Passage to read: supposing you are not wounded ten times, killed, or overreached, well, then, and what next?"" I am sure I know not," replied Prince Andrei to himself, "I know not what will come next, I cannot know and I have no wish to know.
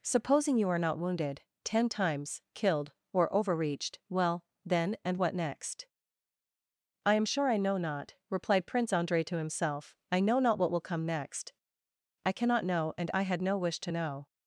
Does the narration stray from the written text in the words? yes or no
yes